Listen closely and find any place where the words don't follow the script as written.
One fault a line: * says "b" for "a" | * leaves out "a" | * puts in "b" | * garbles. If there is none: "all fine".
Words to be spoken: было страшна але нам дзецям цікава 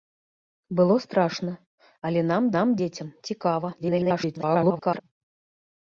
* puts in "нам"
* garbles